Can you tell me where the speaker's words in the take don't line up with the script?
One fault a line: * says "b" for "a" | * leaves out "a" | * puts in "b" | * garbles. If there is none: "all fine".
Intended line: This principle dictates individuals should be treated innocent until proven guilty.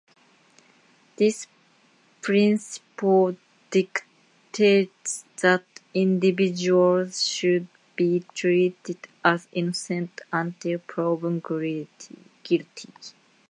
* puts in "that"
* puts in "as"